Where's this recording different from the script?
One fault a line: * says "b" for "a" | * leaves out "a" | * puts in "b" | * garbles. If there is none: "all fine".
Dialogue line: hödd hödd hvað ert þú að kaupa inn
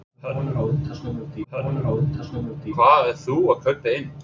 all fine